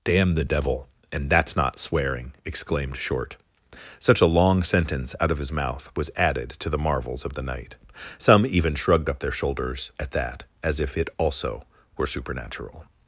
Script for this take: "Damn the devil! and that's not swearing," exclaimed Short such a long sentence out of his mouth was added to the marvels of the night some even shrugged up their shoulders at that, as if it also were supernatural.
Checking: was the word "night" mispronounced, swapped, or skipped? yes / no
no